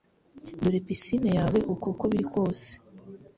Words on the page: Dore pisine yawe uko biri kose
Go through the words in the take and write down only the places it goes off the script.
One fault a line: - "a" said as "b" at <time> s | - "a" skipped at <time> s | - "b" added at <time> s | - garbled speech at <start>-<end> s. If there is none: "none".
- "uko" added at 1.9 s